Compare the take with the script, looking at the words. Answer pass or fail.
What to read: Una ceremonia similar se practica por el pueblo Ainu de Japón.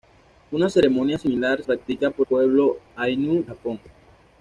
fail